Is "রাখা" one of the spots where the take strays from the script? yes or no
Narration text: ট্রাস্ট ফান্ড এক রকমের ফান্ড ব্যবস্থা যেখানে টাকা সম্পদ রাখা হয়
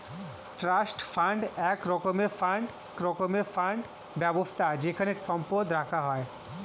no